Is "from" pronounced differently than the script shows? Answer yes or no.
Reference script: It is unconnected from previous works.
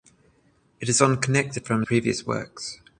no